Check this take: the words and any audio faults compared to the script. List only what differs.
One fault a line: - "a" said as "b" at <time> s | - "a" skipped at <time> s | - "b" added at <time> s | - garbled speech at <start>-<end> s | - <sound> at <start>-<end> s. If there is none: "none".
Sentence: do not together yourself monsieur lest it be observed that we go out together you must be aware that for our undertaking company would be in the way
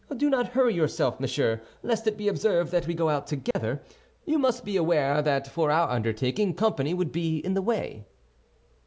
- "together" said as "hurry" at 0.5 s
- dropout at 3.5-3.5 s